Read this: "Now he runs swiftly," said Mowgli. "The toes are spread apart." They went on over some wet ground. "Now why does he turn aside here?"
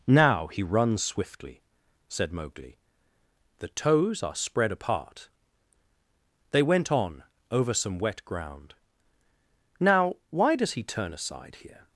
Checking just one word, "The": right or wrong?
right